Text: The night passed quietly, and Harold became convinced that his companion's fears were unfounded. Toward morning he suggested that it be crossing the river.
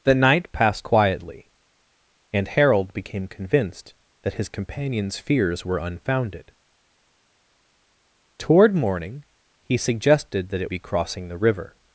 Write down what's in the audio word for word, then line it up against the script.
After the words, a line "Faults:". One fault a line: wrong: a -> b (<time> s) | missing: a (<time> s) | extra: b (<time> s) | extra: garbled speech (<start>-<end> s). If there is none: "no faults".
The night passed quietly, and Harold became convinced that his companion's fears were unfounded. Toward morning he suggested that it be crossing the river.
Faults:
no faults